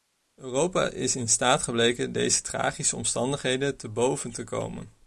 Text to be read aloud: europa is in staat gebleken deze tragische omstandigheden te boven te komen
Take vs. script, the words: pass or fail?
pass